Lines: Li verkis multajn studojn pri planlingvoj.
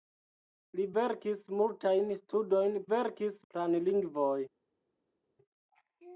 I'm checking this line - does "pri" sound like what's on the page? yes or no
no